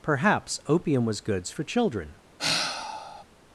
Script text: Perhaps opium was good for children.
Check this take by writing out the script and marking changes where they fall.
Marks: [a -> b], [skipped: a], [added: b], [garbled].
Perhaps opium was [good -> goods] for children.